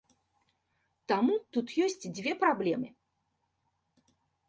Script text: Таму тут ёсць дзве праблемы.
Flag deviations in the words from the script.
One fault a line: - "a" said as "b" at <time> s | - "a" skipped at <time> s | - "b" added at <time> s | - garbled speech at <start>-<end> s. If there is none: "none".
none